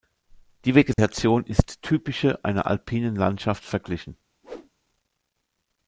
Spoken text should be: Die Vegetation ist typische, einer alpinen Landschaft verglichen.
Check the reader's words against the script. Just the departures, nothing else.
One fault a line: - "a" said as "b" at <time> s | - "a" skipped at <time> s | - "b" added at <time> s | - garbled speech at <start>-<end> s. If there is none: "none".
none